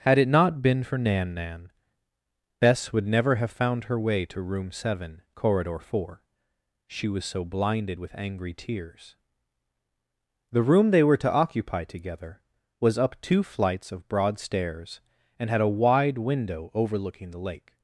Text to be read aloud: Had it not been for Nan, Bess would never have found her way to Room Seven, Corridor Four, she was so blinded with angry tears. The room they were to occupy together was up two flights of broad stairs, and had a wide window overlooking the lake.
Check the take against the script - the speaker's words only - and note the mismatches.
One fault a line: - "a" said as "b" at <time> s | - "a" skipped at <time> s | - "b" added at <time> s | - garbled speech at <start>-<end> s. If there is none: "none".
- "Nan" added at 1.4 s